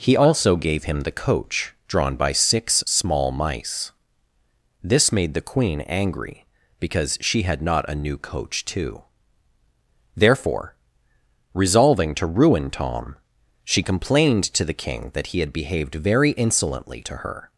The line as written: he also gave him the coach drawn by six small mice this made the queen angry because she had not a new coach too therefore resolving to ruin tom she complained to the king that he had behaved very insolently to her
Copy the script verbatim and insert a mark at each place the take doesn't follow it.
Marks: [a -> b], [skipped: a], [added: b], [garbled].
he also gave him the coach drawn by six small mice this made the queen angry because she had not a new coach too therefore resolving to ruin tom she complained to the king that he had behaved very insolently to her